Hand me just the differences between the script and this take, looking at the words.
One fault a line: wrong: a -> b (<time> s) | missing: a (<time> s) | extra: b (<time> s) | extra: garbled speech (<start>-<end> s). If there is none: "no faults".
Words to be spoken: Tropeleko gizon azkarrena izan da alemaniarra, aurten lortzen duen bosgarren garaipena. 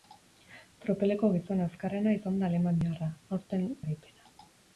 missing: lortzen duen bosgarren (3.7 s)